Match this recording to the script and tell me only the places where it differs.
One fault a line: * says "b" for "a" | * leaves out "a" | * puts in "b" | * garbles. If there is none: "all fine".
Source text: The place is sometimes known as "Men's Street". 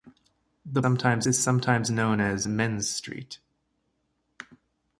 * says "sometimes" for "place"